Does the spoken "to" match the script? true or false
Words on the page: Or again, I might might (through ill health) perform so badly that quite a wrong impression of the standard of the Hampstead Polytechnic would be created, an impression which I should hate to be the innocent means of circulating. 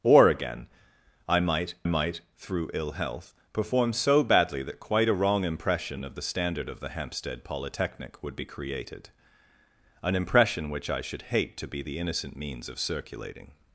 true